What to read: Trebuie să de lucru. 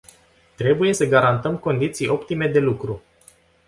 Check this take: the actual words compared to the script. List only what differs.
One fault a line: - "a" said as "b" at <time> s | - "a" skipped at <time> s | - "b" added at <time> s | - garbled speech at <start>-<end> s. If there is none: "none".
- "garantăm condiții optime" added at 1.0 s